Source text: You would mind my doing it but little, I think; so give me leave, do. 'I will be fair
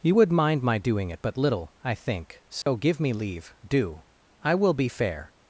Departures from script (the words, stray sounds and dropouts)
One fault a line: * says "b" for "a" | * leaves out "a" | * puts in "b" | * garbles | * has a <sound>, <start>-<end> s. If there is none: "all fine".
* has a dropout, 2.6-2.7 s